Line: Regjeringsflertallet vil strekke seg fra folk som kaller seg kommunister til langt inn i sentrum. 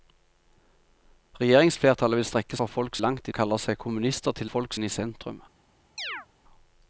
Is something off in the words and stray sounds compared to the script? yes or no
yes